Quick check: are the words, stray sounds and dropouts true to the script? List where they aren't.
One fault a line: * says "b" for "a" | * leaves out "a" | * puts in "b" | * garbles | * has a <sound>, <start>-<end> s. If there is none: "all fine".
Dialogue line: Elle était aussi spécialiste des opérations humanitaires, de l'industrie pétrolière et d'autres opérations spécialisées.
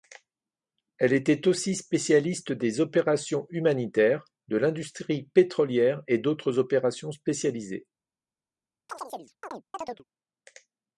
* has a chirp, 8.9-10.0 s